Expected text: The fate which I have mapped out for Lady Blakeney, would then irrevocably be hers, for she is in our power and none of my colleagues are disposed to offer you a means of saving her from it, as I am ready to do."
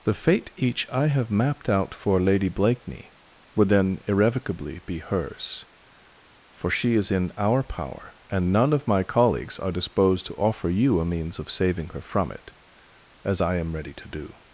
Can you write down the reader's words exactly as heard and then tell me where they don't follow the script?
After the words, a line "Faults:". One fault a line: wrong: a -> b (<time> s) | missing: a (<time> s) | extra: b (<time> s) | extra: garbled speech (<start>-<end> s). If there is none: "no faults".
The fate each I have mapped out for Lady Blakeney, would then irrevocably be hers, for she is in our power and none of my colleagues are disposed to offer you a means of saving her from it, as I am ready to do."
Faults:
wrong: which -> each (0.6 s)